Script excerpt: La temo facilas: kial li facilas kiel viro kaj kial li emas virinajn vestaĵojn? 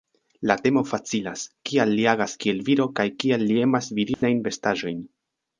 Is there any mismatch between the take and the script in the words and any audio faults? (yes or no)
yes